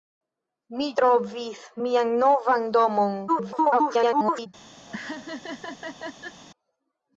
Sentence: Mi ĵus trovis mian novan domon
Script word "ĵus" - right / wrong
wrong